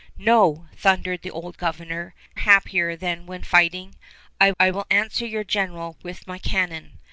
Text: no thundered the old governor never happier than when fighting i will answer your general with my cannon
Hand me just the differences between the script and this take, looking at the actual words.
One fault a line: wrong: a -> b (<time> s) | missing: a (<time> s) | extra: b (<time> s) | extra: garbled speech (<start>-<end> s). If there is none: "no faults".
missing: never (2.1 s)
extra: i (4.6 s)